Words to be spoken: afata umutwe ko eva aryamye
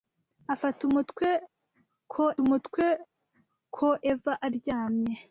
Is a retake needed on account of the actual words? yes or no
yes